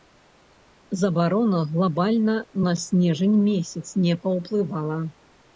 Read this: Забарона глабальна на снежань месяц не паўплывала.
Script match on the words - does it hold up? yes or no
yes